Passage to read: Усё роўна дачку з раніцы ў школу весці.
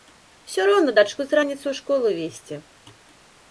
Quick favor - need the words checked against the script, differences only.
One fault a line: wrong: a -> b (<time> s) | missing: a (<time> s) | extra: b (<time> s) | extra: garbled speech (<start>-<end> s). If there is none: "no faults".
no faults